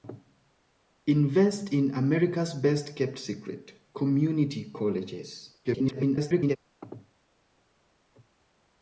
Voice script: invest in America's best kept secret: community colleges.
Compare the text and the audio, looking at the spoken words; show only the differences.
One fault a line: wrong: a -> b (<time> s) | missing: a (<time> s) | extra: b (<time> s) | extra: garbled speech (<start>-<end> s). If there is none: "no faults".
extra: garbled speech (5.6-6.6 s)